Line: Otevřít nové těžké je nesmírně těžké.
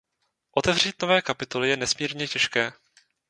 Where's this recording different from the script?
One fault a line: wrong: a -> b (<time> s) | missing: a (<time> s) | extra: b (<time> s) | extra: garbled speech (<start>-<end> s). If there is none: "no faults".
wrong: těžké -> kapitoly (1.2 s)